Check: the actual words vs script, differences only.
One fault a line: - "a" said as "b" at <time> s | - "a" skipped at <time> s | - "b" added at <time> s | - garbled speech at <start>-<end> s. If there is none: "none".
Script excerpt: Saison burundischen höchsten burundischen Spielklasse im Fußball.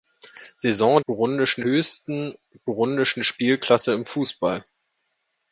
none